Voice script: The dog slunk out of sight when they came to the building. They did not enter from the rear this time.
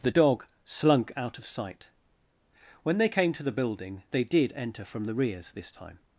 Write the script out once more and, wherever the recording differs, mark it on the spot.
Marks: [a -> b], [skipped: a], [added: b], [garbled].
The dog slunk out of sight when they came to the building. They did [skipped: not] enter from the [rear -> rears] this time.